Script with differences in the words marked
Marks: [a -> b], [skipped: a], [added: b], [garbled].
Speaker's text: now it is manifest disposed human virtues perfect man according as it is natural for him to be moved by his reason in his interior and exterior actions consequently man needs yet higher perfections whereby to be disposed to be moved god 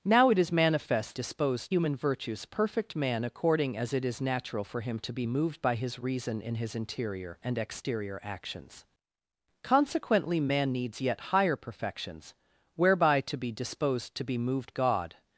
now it is manifest disposed human virtues perfect man according as it is natural for him to be moved by his reason in his interior and exterior actions consequently man needs yet higher perfections whereby to be disposed to be moved god